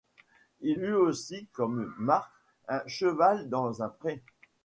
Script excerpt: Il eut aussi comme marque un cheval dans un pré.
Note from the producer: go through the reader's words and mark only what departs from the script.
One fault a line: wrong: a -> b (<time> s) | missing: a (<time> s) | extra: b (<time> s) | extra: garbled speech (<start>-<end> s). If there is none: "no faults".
no faults